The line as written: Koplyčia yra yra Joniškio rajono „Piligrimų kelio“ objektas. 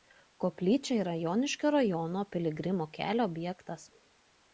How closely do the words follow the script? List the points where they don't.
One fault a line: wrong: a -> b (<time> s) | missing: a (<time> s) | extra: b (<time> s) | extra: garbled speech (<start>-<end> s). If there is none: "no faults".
missing: yra (1.1 s)